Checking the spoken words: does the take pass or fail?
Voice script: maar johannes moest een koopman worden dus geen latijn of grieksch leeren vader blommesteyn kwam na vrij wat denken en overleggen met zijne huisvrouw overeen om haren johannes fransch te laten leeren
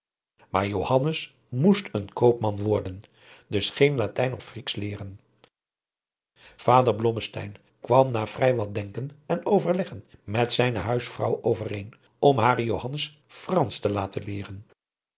pass